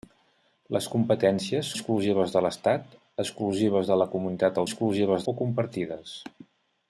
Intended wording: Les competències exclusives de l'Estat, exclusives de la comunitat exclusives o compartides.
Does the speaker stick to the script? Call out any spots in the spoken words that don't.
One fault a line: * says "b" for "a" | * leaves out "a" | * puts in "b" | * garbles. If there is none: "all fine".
all fine